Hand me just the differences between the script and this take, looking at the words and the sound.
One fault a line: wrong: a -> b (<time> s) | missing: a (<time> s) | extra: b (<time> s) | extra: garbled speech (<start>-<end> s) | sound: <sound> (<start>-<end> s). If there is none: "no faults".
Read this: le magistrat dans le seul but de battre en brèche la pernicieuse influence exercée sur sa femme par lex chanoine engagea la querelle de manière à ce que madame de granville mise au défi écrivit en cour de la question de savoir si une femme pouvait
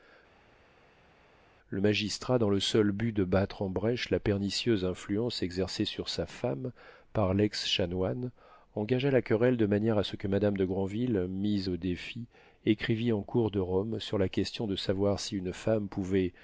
extra: rome sur (13.6 s)